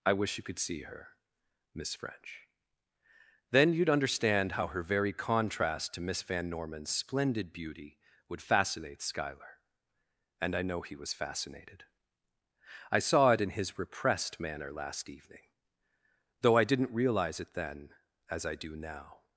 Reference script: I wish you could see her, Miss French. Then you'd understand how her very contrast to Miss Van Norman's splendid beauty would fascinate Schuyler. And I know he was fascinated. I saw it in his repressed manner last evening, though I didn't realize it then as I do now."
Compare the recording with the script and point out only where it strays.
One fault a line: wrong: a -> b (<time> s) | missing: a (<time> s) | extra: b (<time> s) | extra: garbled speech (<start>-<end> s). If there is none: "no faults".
no faults